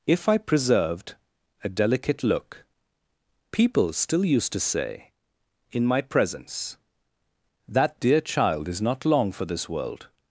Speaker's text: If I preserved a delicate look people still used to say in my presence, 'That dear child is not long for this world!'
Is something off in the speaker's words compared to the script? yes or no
no